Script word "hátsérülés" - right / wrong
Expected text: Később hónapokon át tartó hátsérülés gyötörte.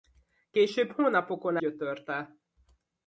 wrong